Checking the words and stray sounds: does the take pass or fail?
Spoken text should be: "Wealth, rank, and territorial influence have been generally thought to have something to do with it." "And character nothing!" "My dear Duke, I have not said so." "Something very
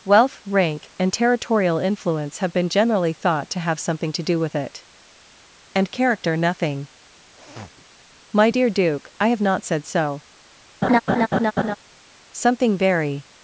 fail